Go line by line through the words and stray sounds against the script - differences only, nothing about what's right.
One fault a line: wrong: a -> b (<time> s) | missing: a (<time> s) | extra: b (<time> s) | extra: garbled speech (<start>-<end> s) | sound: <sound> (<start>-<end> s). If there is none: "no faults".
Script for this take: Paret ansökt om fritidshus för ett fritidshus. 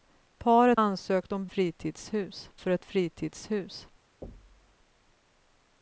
sound: thud (4.2-4.7 s)